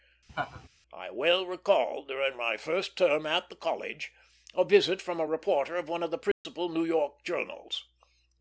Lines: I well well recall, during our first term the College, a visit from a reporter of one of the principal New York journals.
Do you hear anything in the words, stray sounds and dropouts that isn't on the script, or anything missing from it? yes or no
yes